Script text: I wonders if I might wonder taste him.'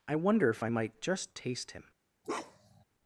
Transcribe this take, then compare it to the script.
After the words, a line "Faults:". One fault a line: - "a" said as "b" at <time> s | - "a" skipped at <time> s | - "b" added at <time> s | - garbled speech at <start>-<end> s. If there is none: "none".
I wonder if I might just taste him.'
Faults:
- "wonders" said as "wonder" at 0.1 s
- "wonder" said as "just" at 1.0 s